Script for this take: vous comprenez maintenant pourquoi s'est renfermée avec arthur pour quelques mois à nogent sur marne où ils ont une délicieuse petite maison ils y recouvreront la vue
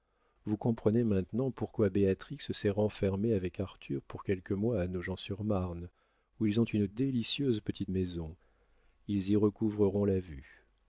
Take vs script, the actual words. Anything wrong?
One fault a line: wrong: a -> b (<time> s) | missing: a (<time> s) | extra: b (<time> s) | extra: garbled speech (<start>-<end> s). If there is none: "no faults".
extra: béatrix (1.9 s)